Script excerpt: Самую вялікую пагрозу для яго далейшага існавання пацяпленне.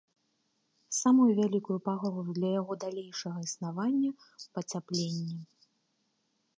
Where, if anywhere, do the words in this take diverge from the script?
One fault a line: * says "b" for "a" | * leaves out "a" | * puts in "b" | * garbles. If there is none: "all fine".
all fine